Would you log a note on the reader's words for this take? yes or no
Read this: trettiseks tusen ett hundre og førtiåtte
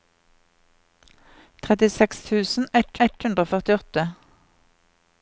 yes